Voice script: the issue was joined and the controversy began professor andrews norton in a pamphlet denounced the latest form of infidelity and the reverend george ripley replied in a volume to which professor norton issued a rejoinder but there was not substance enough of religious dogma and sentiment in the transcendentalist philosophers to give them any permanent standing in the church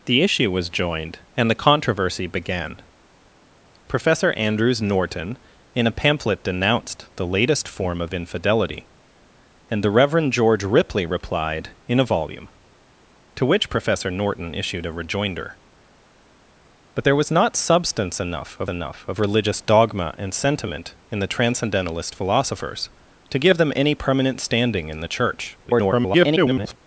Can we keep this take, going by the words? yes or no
no